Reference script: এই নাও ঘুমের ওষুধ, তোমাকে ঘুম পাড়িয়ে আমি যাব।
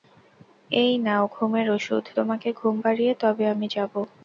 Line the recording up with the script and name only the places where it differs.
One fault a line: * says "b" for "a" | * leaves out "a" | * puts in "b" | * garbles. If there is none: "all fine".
* puts in "তবে"